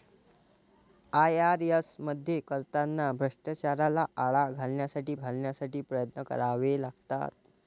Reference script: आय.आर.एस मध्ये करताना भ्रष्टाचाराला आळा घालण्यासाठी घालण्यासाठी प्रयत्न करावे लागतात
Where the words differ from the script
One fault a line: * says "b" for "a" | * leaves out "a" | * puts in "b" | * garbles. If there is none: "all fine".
all fine